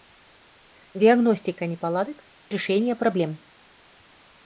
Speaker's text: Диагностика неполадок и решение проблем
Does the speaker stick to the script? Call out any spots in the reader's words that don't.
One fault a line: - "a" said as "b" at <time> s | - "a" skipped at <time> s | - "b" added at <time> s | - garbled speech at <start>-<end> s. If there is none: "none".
- "и" skipped at 2.2 s